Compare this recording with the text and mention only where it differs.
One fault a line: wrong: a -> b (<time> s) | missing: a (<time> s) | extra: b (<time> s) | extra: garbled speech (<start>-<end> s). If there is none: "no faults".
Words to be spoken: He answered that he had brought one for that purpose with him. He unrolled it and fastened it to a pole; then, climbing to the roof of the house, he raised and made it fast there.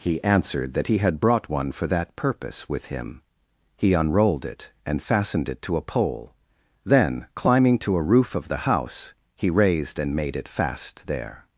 wrong: the -> a (8.0 s)